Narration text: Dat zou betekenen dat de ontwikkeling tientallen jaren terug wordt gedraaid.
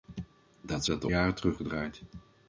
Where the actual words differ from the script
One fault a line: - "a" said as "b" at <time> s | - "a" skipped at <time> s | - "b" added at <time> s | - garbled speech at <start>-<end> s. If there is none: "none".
- "zou betekenen" skipped at 0.8 s
- "ontwikkeling tientallen" skipped at 1.1 s
- "wordt" skipped at 1.6 s